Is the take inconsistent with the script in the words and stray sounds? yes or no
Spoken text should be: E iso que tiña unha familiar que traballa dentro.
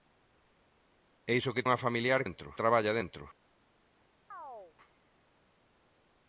yes